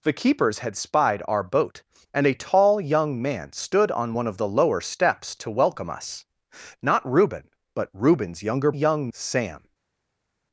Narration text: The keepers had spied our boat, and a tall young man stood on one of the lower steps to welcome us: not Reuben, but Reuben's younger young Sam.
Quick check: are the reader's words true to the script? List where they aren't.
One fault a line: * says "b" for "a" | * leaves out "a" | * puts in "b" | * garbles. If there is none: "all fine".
all fine